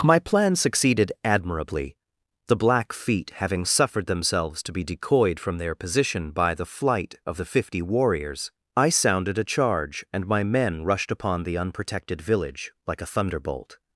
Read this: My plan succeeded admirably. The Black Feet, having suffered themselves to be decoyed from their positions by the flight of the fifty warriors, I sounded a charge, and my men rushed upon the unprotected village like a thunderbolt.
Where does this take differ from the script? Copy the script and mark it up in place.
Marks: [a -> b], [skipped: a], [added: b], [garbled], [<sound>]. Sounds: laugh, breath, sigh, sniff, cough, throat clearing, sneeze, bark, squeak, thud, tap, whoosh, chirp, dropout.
My plan succeeded admirably. The Black Feet, having suffered themselves to be decoyed from their [positions -> position] by the flight of the fifty warriors, I sounded a charge, and my men rushed upon the unprotected village like a thunderbolt.